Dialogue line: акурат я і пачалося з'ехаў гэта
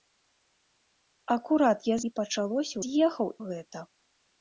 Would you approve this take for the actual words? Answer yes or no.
yes